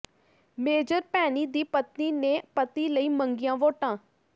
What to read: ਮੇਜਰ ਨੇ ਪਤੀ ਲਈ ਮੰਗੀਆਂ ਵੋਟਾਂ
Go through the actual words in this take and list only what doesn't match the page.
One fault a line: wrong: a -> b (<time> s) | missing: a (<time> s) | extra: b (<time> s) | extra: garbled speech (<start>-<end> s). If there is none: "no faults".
extra: ਭੈਣੀ ਦੀ ਪਤਨੀ (1.1 s)